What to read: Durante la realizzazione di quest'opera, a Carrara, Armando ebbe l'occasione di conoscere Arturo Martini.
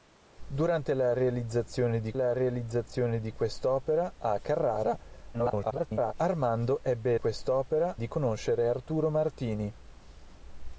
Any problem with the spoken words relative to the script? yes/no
yes